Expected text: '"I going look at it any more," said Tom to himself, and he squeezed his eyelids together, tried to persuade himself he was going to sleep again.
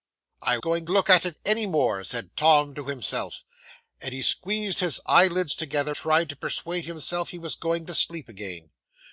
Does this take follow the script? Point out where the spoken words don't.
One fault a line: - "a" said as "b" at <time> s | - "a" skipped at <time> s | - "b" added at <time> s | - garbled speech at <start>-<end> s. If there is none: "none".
none